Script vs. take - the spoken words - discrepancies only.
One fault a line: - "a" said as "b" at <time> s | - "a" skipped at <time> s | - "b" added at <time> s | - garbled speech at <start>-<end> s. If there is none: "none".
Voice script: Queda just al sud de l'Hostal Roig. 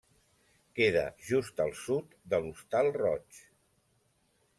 none